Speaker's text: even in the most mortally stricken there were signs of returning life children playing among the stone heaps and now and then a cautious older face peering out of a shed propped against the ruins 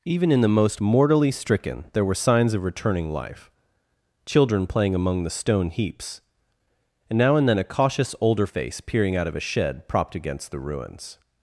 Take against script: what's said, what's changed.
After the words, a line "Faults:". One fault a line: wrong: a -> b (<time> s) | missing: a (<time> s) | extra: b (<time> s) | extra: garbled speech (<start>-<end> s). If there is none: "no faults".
even in the most mortally stricken there were signs of returning life children playing among the stone heaps and now and then a cautious older face peering out of a shed propped against the ruins
Faults:
no faults